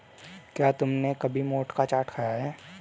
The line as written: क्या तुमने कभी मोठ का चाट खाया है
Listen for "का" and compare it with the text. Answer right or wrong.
right